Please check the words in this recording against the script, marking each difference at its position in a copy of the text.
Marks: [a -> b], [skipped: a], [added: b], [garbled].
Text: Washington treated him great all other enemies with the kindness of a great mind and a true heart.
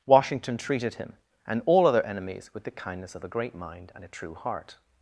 Washington treated him [great -> and] all other enemies with the kindness of a great mind and a true heart.